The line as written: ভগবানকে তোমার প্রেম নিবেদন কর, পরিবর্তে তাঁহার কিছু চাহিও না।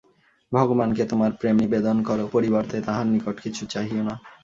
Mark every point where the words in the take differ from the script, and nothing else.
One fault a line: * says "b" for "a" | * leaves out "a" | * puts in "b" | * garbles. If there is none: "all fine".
* puts in "নিকট"